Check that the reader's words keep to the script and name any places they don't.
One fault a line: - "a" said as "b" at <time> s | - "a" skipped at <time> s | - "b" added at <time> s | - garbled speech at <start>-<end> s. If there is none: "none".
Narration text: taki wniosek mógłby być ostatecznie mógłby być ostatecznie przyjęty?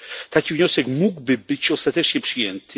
- "mógłby być ostatecznie" skipped at 2.2 s